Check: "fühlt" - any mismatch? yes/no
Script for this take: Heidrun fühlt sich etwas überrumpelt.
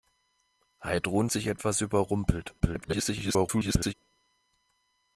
yes